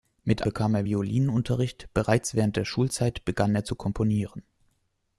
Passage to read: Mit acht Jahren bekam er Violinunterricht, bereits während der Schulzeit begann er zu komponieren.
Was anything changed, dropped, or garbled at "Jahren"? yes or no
yes